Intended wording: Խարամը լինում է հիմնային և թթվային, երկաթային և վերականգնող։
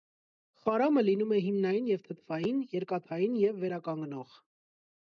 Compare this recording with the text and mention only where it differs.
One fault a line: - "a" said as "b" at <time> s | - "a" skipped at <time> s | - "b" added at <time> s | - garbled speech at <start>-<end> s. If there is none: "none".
none